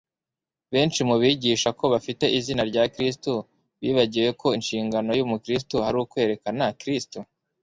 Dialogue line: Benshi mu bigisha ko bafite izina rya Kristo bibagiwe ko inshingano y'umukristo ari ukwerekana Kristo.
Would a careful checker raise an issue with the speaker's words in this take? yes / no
no